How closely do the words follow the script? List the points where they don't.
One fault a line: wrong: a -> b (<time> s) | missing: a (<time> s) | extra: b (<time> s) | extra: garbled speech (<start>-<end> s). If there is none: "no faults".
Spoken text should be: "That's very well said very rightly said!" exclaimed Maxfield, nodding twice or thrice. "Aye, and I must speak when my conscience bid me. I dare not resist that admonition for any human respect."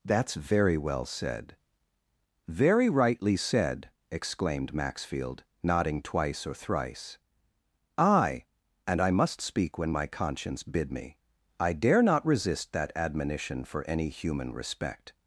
no faults